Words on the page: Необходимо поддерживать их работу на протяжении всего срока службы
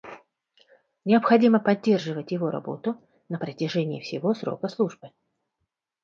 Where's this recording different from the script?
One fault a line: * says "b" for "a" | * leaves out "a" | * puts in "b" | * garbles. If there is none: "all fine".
* says "его" for "их"